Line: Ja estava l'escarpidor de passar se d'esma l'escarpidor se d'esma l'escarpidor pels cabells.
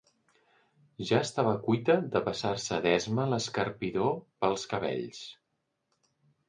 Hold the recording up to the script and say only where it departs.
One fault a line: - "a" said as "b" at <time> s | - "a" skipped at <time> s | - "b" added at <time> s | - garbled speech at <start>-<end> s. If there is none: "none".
- "l'escarpidor" said as "cuita" at 1.7 s
- "se d'esma l'escarpidor" skipped at 4.2 s